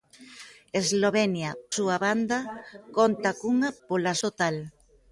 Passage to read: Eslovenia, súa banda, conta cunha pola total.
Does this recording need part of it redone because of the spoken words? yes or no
no